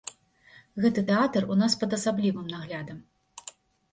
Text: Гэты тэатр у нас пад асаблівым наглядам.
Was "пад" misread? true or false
false